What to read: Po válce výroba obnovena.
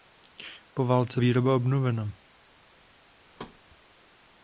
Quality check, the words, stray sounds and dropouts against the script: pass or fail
fail